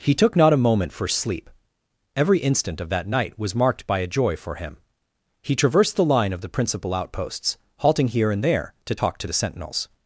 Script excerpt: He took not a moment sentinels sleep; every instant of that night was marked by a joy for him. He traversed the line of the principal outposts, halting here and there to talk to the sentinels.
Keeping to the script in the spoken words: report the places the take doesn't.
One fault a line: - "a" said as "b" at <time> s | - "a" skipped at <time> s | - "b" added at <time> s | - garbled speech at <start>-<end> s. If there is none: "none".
- "sentinels" said as "for" at 0.9 s